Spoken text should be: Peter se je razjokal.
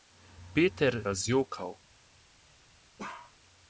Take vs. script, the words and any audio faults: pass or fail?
fail